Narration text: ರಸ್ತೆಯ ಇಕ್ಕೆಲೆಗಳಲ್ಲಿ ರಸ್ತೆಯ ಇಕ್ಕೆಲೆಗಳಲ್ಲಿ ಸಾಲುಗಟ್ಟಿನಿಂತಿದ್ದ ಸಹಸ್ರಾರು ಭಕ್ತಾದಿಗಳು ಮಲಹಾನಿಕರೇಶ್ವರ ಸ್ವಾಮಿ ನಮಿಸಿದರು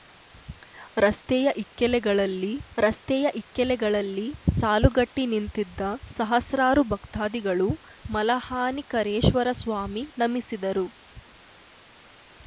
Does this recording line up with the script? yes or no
yes